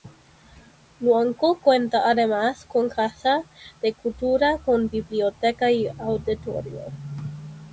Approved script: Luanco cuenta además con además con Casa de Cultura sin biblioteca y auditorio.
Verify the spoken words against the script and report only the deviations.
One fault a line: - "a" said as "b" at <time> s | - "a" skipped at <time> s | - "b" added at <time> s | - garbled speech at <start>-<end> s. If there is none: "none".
- "además con" skipped at 2.9 s
- "sin" said as "con" at 4.6 s